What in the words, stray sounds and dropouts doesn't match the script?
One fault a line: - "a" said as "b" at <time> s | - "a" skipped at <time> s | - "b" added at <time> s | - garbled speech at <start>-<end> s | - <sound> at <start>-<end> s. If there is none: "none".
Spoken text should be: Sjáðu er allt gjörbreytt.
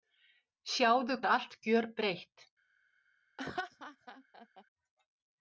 - laugh at 3.4-4.6 s